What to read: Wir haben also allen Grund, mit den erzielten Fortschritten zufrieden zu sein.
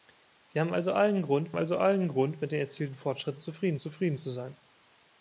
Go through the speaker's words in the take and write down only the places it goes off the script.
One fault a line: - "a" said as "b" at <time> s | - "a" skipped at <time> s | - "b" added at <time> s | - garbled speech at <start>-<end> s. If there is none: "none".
- "also allen Grund" added at 1.6 s
- "zufrieden" added at 3.8 s